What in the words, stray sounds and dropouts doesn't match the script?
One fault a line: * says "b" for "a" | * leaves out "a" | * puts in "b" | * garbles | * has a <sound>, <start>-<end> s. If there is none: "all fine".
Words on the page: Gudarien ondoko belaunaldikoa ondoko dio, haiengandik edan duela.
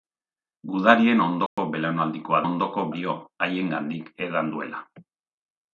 * has a dropout, 1.5-1.6 s